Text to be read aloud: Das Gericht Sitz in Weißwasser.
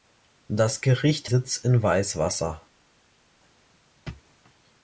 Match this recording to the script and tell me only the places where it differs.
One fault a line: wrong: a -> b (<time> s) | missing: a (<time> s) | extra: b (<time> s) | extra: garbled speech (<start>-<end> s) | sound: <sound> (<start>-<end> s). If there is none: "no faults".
no faults